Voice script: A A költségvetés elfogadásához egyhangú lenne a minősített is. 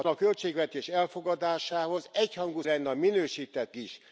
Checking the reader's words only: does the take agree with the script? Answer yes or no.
yes